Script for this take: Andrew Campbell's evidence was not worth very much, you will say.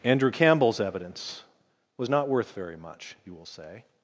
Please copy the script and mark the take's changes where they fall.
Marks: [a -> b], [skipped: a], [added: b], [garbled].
Andrew Campbell's evidence was not worth very much, you will say.